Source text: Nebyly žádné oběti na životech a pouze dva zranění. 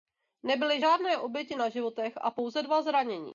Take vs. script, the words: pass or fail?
pass